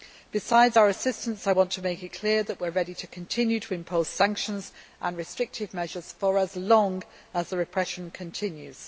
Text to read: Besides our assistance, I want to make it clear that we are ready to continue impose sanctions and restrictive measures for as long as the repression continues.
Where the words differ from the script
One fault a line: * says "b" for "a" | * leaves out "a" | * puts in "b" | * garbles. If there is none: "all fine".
* puts in "to"